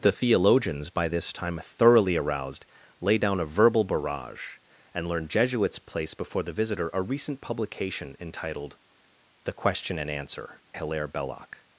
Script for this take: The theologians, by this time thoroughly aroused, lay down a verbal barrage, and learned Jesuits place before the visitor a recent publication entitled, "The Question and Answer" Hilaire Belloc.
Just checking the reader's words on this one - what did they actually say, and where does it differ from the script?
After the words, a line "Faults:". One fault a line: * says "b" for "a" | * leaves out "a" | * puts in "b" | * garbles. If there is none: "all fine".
The theologians, by this time thoroughly aroused, lay down a verbal barrage, and learned Jesuits place before the visitor a recent publication entitled, "The Question and Answer" Hilaire Belloc.
Faults:
all fine